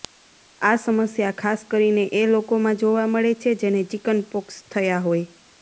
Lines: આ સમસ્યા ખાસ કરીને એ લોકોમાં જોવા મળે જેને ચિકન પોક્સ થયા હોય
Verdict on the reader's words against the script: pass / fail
fail